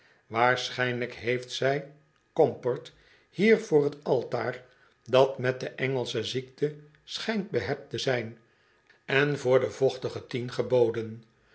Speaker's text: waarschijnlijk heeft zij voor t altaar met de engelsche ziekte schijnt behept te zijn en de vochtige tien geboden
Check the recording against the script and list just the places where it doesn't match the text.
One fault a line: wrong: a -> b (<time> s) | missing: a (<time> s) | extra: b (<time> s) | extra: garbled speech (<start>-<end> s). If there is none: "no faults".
extra: comport hier (2.3 s)
extra: dat (5.0 s)
extra: voor (9.4 s)